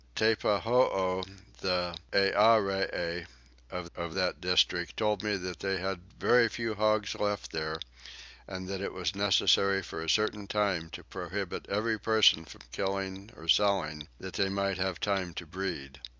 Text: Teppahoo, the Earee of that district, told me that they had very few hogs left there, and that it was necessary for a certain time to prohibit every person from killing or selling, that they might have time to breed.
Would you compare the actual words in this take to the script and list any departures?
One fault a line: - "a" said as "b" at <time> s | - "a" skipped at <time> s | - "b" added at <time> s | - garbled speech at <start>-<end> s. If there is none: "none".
- "of" added at 3.9 s